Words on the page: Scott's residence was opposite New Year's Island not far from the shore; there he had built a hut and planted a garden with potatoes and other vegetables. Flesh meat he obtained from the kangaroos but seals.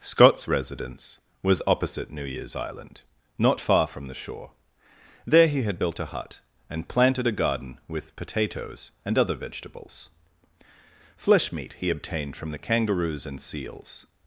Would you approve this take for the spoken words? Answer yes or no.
no